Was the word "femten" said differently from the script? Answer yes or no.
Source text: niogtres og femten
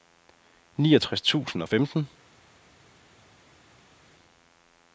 no